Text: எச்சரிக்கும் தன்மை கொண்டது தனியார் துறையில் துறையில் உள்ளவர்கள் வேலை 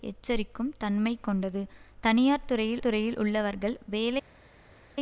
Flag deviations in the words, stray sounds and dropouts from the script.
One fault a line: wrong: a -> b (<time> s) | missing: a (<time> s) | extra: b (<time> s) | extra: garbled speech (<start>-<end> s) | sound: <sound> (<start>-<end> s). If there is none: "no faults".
no faults